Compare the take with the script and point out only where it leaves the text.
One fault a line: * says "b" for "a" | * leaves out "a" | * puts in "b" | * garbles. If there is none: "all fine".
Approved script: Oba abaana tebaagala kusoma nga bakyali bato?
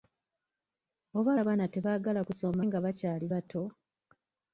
all fine